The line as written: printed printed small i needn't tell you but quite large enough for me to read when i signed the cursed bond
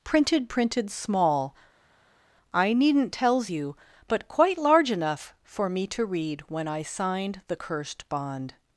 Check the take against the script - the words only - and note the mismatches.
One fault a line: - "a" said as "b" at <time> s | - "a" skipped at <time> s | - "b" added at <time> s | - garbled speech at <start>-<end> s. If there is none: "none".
- "tell" said as "tells" at 3.1 s